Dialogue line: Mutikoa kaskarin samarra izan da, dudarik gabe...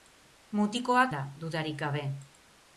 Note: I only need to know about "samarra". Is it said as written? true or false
false